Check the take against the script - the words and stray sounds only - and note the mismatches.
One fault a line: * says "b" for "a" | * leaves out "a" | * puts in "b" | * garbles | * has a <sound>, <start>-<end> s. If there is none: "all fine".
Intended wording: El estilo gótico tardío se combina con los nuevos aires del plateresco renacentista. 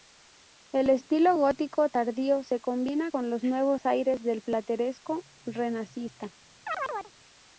* has a chirp, 6.7-7.1 s